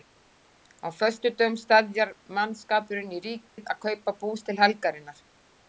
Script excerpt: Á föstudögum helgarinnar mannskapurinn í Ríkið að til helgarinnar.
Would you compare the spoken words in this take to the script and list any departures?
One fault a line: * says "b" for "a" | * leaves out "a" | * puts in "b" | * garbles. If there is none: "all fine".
* says "steðjar" for "helgarinnar"
* puts in "kaupa bús"